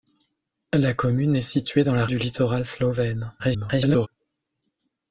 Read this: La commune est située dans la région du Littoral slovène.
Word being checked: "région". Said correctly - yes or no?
no